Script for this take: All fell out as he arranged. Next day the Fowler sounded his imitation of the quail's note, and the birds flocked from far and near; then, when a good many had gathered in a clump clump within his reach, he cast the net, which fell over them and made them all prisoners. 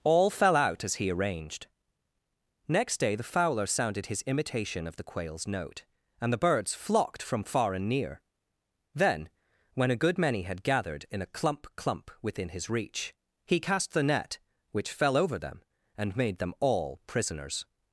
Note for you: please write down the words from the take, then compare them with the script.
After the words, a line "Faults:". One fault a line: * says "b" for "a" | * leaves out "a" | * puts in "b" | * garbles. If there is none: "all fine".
All fell out as he arranged. Next day the Fowler sounded his imitation of the quail's note, and the birds flocked from far and near; then, when a good many had gathered in a clump clump within his reach, he cast the net, which fell over them and made them all prisoners.
Faults:
all fine